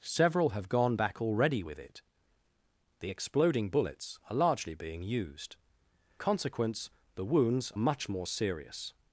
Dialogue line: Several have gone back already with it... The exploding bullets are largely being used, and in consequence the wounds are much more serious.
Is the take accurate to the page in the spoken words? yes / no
no